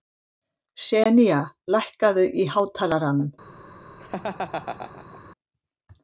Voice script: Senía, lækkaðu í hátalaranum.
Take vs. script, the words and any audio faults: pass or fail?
fail